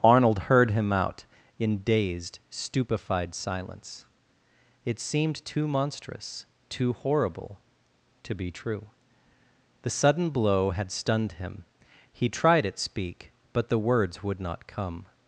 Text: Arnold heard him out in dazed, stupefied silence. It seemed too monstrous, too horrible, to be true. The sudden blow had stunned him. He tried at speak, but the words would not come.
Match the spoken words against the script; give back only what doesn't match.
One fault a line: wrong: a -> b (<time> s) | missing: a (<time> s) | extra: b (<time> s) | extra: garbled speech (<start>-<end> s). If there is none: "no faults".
no faults